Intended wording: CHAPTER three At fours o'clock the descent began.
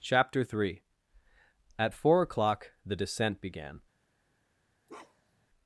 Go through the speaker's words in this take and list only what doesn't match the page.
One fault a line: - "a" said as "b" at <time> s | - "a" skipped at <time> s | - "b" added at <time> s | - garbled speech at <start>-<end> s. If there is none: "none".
- "fours" said as "four" at 1.9 s